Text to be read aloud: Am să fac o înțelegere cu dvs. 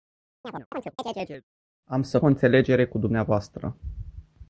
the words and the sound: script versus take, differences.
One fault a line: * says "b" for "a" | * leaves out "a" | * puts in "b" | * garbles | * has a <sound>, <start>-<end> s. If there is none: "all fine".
* has a chirp, 0.4-1.4 s
* leaves out "fac"